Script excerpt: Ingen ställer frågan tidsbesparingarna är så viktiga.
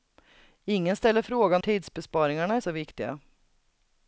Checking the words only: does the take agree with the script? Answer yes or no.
yes